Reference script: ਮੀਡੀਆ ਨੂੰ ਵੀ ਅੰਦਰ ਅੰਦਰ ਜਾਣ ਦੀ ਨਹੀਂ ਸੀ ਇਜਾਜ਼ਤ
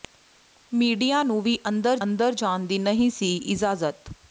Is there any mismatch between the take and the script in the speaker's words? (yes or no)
no